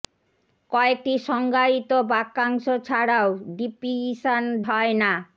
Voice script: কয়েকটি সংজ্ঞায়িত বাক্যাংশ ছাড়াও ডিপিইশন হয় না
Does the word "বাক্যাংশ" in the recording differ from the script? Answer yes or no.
no